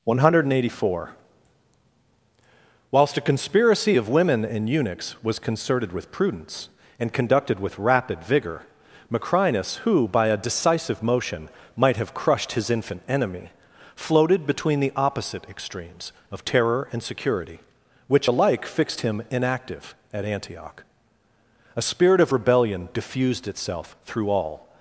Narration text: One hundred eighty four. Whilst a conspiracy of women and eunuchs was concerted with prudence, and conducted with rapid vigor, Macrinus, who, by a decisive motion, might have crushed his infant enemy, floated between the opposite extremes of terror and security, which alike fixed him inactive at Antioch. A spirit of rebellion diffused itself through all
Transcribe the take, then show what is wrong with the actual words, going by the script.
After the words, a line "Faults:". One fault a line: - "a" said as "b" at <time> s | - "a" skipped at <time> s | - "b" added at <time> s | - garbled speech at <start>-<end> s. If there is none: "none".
One hundred eighty four. Whilst a conspiracy of women and eunuchs was concerted with prudence, and conducted with rapid vigor, Macrinus, who, by a decisive motion, might have crushed his infant enemy, floated between the opposite extremes of terror and security, which alike fixed him inactive at Antioch. A spirit of rebellion diffused itself through all
Faults:
none